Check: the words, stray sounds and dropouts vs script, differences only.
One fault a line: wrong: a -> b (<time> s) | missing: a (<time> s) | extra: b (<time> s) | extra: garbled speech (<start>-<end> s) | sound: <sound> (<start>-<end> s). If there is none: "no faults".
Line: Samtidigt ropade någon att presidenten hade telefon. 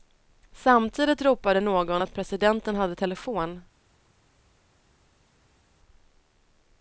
no faults